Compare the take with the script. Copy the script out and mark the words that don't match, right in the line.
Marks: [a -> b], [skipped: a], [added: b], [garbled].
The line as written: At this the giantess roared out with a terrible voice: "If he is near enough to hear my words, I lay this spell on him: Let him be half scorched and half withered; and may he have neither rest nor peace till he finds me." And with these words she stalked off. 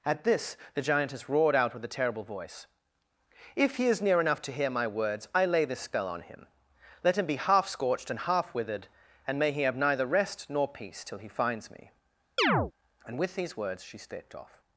At this the giantess roared out with a terrible voice: "If he is near enough to hear my words, I lay this spell on him: Let him be half scorched and half withered; and may he have neither rest nor peace till he finds me." And with these words she [stalked -> stepped] off.